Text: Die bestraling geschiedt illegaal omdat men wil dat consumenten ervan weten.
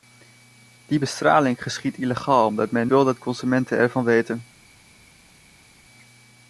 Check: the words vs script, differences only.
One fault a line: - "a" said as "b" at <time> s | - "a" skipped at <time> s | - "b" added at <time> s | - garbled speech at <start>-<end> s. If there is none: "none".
none